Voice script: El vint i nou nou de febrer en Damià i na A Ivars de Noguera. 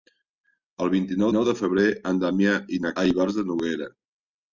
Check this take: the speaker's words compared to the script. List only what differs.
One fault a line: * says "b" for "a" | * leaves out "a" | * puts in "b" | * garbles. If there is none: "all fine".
all fine